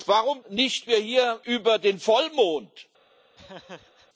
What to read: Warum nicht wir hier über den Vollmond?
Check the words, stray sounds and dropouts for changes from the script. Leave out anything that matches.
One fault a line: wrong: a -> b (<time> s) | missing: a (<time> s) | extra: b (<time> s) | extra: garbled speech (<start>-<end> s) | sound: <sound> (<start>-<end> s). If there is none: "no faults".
sound: laugh (3.4-4.1 s)